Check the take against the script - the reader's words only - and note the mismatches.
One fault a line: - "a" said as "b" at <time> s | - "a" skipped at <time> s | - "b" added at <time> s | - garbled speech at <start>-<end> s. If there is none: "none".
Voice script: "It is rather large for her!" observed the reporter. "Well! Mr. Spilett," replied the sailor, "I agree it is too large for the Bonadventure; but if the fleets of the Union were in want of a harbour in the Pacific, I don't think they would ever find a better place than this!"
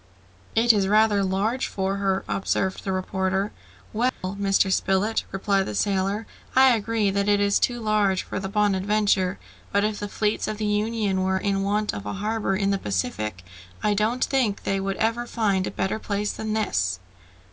- "that" added at 7.1 s